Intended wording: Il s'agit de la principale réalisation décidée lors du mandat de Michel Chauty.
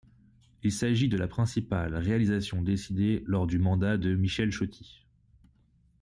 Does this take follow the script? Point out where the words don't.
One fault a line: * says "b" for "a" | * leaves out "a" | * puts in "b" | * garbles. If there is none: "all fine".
all fine